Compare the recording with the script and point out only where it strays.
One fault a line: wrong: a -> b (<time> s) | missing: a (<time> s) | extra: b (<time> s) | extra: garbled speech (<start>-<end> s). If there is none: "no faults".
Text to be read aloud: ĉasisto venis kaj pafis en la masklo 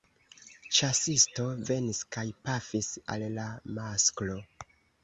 wrong: en -> al (3.2 s)